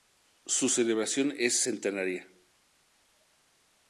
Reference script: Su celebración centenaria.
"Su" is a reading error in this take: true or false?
false